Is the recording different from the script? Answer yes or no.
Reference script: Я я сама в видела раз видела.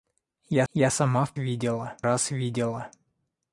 no